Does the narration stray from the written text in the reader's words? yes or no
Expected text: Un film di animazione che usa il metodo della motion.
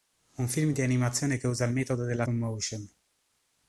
no